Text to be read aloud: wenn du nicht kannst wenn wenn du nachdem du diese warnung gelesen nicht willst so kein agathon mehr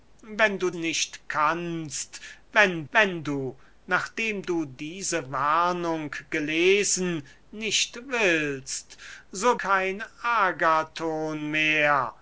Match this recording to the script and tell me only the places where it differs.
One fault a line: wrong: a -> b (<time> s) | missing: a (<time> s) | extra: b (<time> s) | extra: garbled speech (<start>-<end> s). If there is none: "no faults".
no faults